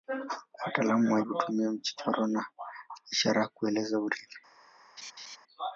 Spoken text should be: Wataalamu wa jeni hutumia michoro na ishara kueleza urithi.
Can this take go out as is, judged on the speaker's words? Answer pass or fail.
fail